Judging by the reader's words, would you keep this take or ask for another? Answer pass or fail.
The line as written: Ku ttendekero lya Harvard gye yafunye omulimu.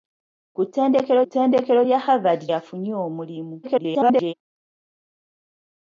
fail